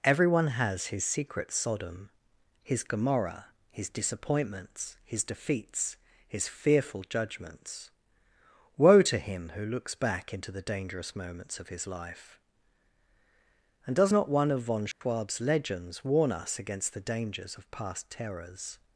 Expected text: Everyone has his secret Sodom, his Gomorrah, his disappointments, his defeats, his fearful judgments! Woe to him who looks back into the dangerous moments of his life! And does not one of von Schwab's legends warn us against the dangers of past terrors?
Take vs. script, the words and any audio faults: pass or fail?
fail